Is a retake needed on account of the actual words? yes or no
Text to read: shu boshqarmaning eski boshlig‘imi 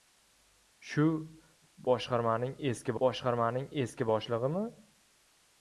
yes